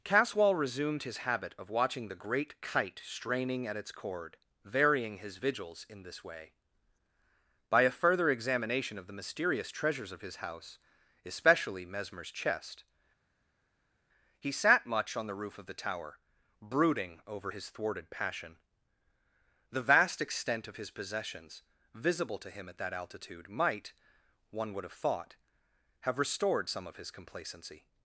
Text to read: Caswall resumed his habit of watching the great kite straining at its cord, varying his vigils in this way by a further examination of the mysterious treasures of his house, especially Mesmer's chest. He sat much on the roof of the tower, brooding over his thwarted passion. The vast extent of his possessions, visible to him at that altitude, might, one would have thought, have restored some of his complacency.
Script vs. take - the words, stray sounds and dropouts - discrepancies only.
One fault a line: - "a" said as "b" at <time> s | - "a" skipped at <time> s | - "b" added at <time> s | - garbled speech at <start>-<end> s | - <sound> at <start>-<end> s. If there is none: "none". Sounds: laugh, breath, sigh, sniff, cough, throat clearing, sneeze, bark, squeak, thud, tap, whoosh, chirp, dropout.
none